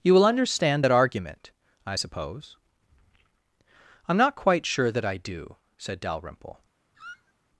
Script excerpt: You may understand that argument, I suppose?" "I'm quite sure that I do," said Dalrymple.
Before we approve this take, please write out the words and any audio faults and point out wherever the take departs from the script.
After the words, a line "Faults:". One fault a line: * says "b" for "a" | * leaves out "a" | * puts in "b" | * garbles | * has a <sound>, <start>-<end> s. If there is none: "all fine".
You will understand that argument, I suppose?" "I'm not quite sure that I do," said Dalrymple.
Faults:
* says "will" for "may"
* puts in "not"
* has a squeak, 6.9-7.3 s